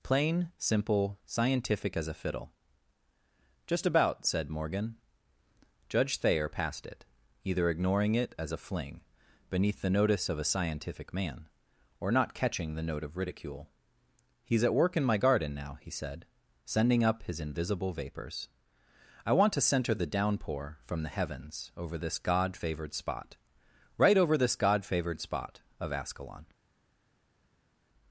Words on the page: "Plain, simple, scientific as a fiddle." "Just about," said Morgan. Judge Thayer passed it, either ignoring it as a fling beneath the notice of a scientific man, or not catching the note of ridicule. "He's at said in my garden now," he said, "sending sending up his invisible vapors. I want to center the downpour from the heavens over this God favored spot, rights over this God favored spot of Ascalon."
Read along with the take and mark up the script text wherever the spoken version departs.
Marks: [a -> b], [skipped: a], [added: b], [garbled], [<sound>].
"Plain, simple, scientific as a fiddle." "Just about," said Morgan. Judge Thayer passed it, either ignoring it as a fling beneath the notice of a scientific man, or not catching the note of ridicule. "He's at [said -> work] in my garden now," he said, "sending [skipped: sending] up his invisible vapors. I want to center the downpour from the heavens over this God favored spot, [rights -> right] over this God favored spot of Ascalon."